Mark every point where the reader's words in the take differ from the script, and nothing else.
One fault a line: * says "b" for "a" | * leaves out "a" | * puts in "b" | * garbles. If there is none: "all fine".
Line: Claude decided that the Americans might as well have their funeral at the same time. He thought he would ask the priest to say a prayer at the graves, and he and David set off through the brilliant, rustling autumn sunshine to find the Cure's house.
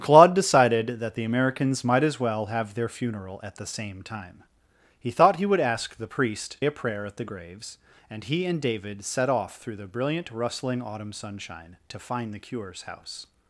* leaves out "to say"